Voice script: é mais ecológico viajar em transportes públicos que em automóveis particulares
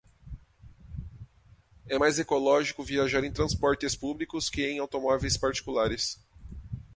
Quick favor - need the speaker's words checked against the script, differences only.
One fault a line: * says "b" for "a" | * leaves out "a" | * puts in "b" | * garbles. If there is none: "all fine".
all fine